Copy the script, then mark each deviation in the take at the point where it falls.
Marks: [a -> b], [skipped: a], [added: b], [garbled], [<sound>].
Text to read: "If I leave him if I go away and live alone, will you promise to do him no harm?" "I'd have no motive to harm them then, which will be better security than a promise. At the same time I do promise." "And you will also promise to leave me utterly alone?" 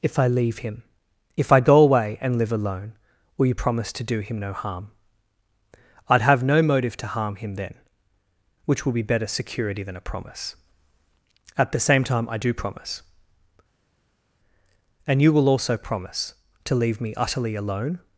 "If I leave him if I go away and live alone, will you promise to do him no harm?" "I'd have no motive to harm [them -> him] then, which will be better security than a promise. At the same time I do promise." "And you will also promise to leave me utterly alone?"